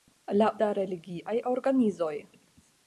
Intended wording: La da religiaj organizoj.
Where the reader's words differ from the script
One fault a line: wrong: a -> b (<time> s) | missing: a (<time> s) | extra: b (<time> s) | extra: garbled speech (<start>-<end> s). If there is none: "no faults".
no faults